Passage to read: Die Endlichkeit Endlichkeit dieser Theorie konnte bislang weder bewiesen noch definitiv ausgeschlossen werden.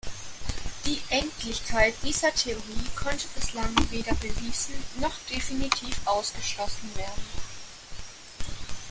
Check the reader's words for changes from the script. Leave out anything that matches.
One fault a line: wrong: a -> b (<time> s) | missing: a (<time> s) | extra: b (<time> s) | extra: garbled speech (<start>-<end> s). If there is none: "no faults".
missing: Endlichkeit (1.9 s)